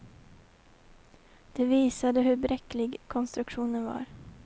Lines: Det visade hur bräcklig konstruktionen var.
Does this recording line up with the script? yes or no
yes